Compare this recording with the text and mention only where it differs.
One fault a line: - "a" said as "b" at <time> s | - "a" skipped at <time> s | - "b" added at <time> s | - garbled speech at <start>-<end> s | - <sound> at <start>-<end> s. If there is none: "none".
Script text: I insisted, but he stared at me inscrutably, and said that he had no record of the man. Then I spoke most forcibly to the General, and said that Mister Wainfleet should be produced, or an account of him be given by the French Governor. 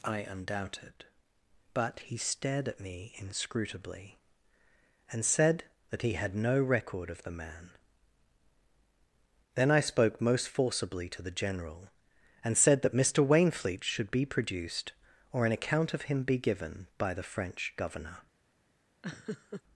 - "insisted" said as "undoubted" at 0.2 s
- laugh at 19.0-19.6 s